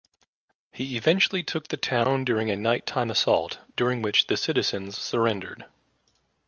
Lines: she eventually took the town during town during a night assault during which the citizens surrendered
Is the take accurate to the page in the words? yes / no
no